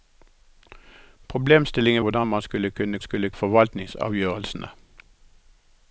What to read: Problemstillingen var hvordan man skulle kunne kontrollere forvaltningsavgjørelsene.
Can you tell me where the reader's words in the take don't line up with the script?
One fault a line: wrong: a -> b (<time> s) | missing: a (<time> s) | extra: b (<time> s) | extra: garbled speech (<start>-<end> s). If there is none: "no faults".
missing: var (2.0 s)
wrong: kontrollere -> skulle (3.0 s)